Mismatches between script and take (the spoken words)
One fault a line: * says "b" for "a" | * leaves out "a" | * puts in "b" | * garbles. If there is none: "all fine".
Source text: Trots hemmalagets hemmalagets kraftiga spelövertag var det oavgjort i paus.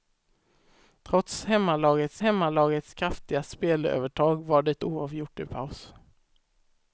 all fine